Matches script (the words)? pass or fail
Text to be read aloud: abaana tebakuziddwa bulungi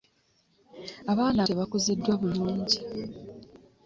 pass